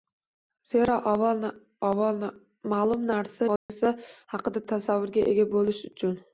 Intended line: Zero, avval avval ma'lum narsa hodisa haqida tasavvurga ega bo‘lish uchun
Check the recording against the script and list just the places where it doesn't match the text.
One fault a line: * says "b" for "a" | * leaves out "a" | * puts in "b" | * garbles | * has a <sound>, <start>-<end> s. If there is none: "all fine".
* has a dropout, 3.6-3.7 s